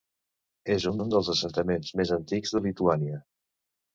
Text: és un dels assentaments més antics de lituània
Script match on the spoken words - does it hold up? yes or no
no